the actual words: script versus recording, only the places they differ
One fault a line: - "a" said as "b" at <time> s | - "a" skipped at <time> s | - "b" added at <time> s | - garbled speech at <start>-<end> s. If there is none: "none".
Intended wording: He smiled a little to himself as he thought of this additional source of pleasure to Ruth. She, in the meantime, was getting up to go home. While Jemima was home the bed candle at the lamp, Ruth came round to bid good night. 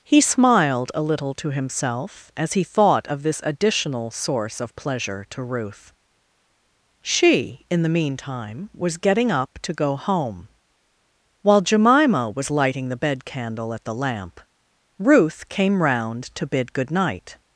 - "home" said as "lighting" at 12.5 s